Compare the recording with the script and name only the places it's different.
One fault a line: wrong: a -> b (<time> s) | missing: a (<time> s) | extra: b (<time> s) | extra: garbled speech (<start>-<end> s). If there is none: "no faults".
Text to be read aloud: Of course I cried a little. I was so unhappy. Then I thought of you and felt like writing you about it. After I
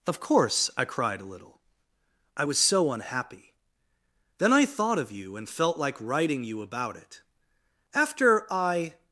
no faults